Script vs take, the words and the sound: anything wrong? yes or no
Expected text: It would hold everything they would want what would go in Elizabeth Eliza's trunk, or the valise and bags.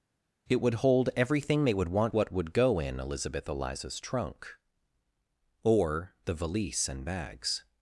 no